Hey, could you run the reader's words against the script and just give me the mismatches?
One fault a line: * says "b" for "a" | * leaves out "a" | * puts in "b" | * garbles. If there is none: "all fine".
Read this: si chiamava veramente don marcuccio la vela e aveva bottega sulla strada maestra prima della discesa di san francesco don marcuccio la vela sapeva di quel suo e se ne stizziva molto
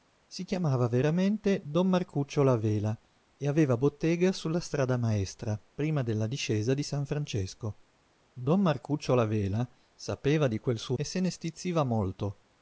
all fine